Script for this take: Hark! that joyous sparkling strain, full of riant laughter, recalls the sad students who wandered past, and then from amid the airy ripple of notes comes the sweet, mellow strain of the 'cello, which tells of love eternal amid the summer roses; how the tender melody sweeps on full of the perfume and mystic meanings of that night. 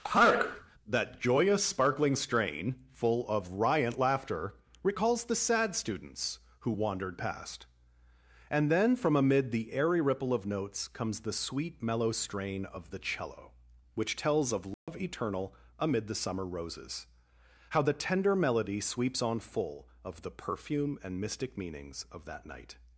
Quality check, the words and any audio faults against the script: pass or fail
fail